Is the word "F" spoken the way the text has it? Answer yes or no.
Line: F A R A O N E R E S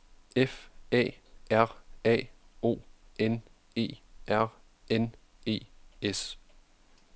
yes